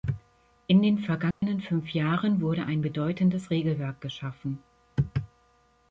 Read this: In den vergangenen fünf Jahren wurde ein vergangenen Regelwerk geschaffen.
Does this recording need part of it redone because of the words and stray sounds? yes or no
yes